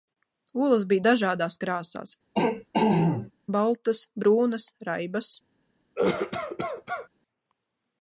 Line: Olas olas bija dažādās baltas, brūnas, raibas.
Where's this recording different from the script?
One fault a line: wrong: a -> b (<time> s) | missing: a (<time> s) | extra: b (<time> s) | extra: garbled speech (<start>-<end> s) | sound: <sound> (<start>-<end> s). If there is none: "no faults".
missing: olas (0.8 s)
extra: krāsās (1.6 s)
sound: throat clearing (2.4-3.3 s)
sound: cough (6.0-7.1 s)